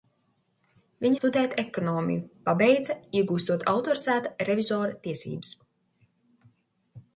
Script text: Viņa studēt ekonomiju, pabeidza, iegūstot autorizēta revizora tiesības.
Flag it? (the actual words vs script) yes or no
no